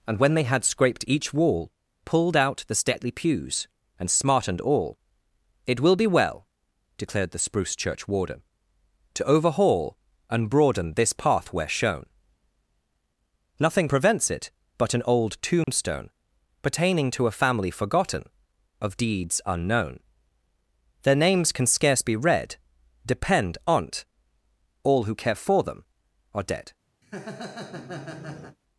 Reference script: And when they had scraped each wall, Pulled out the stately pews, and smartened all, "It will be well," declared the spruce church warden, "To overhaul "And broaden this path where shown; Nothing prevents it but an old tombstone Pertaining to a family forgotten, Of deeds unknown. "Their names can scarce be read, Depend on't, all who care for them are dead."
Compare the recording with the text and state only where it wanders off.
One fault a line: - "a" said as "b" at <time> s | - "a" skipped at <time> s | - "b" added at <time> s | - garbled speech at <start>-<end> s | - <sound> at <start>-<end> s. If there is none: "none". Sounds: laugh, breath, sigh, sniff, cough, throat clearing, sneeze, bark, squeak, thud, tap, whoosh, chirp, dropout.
- dropout at 15.6-15.7 s
- laugh at 27.0-28.6 s